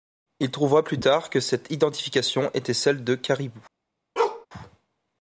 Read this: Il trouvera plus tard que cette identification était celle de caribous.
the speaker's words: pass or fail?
pass